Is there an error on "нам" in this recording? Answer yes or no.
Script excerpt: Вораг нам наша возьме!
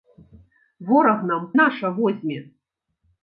no